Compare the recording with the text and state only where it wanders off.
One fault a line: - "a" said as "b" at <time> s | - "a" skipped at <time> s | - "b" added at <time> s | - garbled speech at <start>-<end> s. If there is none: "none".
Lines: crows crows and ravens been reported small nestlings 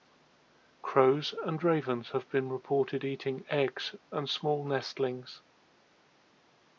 - "crows" skipped at 1.4 s
- "have" added at 2.1 s
- "eating eggs and" added at 3.0 s